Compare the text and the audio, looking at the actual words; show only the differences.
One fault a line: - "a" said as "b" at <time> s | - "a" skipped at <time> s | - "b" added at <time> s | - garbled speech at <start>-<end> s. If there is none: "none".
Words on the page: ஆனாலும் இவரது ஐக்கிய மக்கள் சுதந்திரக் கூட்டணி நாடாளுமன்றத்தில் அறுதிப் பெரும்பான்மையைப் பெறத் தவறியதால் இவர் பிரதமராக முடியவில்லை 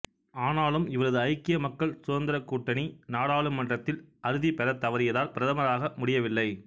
- "பெரும்பான்மையைப்" skipped at 4.6 s
- "இவர்" skipped at 5.3 s